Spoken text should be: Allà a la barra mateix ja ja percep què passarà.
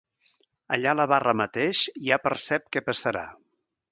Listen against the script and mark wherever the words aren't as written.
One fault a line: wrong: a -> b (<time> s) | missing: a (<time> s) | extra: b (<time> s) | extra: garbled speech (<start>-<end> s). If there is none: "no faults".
missing: ja (2.2 s)